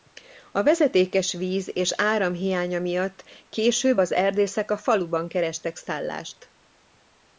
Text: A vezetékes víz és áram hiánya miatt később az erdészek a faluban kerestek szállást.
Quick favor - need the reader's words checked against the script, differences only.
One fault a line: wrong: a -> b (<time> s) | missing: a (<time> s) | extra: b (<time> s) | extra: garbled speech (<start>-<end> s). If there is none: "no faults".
no faults